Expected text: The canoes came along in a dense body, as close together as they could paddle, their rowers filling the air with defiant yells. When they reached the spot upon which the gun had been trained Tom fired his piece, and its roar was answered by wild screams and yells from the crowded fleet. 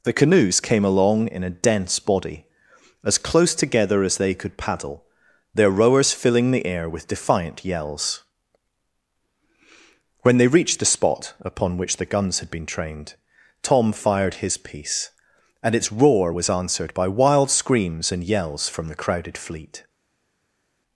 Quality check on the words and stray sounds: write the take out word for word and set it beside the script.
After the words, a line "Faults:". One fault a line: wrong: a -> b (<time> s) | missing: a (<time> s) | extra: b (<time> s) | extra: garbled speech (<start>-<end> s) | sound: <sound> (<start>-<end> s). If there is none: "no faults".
The canoes came along in a dense body, as close together as they could paddle, their rowers filling the air with defiant yells. When they reached the spot upon which the guns had been trained Tom fired his piece, and its roar was answered by wild screams and yells from the crowded fleet.
Faults:
wrong: gun -> guns (12.1 s)